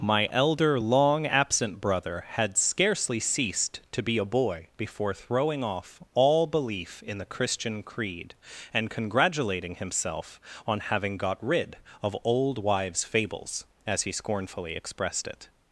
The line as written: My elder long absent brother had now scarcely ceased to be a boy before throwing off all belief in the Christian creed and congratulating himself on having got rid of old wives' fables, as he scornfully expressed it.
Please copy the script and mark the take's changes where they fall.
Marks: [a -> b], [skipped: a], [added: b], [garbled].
My elder long absent brother had [skipped: now] scarcely ceased to be a boy before throwing off all belief in the Christian creed and congratulating himself on having got rid of old wives' fables, as he scornfully expressed it.